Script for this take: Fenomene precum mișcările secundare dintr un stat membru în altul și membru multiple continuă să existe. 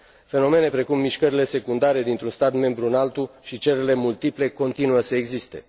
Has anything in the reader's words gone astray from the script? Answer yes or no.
yes